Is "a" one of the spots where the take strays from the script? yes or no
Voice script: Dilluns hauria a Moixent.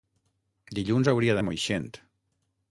no